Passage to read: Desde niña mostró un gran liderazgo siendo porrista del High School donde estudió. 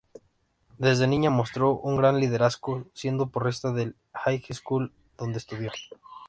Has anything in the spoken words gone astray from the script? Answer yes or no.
no